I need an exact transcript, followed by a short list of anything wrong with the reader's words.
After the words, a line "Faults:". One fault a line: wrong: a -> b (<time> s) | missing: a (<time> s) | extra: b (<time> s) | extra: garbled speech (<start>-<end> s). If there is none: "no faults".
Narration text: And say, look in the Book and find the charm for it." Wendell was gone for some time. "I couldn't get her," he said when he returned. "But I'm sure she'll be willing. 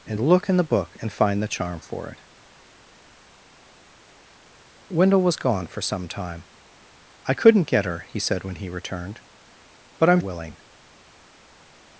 And look in the Book and find the charm for it." Wendell was gone for some time. "I couldn't get her," he said when he returned. "But I'm willing.
Faults:
missing: say (0.2 s)
missing: sure she'll be (10.2 s)